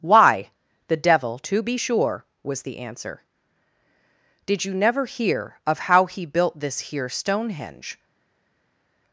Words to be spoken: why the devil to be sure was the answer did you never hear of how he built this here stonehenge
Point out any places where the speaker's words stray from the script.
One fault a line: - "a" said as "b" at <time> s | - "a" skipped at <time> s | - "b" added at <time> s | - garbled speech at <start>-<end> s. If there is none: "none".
none